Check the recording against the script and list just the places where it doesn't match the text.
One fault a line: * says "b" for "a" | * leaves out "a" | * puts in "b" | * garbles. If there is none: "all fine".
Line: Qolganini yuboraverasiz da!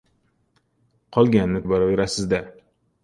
all fine